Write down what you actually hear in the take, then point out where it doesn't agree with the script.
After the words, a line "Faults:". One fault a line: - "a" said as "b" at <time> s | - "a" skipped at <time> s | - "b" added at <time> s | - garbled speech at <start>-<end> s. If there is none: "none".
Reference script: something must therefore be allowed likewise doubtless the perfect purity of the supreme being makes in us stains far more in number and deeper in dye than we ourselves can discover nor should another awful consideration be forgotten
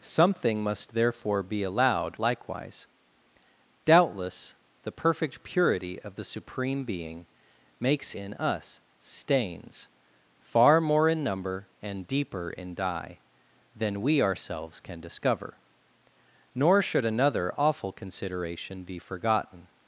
something must therefore be allowed likewise doubtless the perfect purity of the supreme being makes in us stains far more in number and deeper in dye than we ourselves can discover nor should another awful consideration be forgotten
Faults:
none